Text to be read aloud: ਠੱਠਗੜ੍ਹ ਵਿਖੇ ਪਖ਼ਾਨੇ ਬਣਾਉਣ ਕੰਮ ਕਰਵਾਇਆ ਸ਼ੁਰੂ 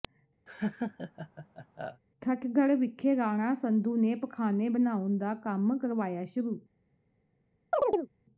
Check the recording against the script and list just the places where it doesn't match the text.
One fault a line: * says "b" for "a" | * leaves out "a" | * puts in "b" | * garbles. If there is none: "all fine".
* puts in "ਰਾਣਾ ਸੰਧੂ ਨੇ"
* puts in "ਦਾ"